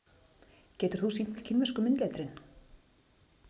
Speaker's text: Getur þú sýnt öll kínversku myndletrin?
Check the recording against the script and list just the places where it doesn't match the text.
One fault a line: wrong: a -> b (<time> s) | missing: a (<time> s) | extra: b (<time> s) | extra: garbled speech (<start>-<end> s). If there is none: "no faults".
no faults